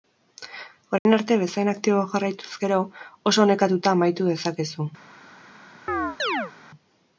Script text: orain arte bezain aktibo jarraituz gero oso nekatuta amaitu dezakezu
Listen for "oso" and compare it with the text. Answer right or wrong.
right